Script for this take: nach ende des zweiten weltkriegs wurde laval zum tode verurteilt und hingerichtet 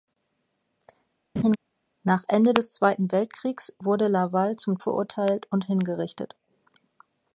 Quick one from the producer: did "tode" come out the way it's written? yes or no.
no